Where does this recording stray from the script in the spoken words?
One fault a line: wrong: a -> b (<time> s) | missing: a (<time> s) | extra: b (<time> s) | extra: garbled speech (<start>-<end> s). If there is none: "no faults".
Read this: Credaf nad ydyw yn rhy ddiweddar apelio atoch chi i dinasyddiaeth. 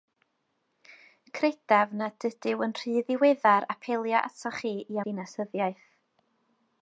no faults